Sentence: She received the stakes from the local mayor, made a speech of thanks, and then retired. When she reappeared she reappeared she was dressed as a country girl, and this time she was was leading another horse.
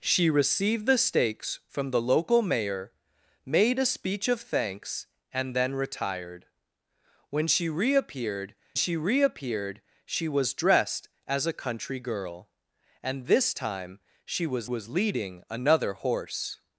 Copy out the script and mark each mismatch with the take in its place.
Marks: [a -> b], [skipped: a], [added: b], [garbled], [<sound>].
She received the stakes from the local mayor, made a speech of thanks, and then retired. When she reappeared she reappeared she was dressed as a country girl, and this time she was was leading another horse.